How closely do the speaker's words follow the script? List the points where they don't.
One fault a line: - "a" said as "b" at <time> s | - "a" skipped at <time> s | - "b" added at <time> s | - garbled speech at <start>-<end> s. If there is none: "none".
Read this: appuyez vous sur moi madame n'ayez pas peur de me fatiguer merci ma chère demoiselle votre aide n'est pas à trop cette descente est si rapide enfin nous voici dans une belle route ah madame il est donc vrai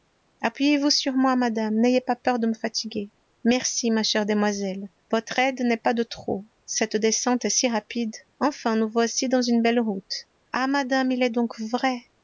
- "à" said as "de" at 5.9 s